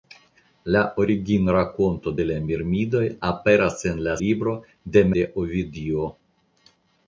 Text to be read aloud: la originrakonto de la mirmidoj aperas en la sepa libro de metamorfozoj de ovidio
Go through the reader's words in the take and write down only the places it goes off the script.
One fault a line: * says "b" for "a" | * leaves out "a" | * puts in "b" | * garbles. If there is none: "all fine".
* leaves out "sepa"
* leaves out "metamorfozoj"